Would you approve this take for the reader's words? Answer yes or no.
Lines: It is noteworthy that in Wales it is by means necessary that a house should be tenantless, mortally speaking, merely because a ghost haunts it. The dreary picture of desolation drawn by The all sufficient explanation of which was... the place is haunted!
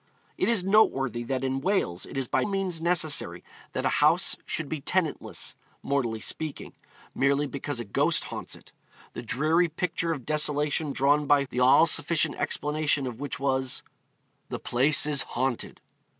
yes